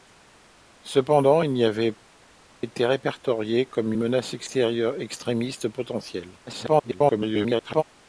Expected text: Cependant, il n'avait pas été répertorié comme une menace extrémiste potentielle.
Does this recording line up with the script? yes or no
no